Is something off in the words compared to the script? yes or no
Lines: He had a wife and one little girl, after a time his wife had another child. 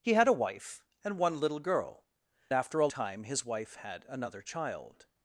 no